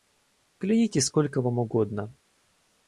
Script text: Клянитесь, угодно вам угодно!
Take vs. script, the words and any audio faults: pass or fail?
fail